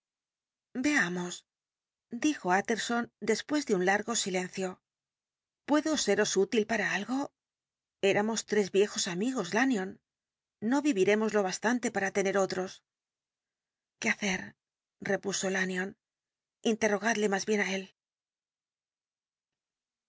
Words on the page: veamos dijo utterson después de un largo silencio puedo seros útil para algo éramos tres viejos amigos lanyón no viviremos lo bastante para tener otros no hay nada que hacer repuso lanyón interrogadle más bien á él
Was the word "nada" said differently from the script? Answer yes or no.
yes